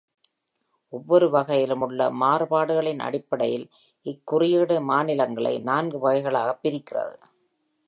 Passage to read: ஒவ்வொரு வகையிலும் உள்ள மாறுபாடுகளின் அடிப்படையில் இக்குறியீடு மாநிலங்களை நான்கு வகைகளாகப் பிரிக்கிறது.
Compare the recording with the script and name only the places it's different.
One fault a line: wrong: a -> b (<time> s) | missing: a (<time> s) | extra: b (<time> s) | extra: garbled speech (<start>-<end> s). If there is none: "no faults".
no faults